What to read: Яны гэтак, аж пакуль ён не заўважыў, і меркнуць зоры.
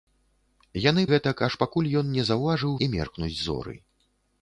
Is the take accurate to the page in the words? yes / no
yes